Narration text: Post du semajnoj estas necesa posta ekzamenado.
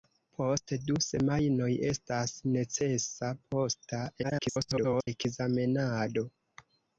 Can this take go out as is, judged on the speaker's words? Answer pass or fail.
fail